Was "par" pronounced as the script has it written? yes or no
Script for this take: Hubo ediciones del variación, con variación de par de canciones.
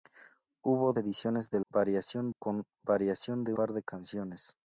yes